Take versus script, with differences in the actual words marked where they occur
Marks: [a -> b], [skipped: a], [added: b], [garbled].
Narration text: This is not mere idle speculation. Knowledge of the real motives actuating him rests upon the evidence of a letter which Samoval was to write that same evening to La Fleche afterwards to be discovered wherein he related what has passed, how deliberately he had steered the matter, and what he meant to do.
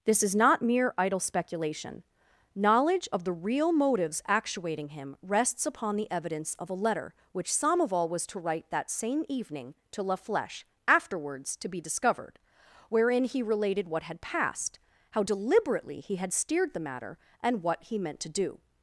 This is not mere idle speculation. Knowledge of the real motives actuating him rests upon the evidence of a letter which Samoval was to write that same evening to La Fleche afterwards to be discovered wherein he related what [has -> had] passed, how deliberately he had steered the matter, and what he meant to do.